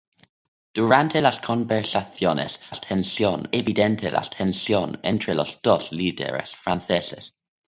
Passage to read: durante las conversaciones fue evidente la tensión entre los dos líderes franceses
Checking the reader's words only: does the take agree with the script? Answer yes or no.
no